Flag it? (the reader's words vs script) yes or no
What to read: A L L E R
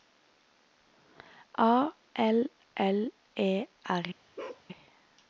no